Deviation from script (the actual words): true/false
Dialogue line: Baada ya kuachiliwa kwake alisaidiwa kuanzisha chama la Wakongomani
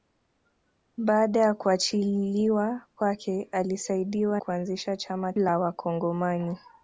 false